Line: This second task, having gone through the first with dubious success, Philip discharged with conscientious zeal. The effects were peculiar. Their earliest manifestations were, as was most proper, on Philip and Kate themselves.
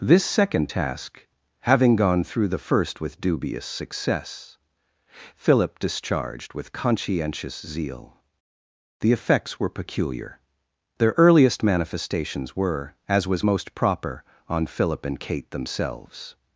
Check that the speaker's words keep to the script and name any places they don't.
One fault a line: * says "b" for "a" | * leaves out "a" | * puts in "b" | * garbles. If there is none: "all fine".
all fine